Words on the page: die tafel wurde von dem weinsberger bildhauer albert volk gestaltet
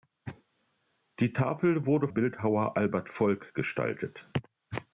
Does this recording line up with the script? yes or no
no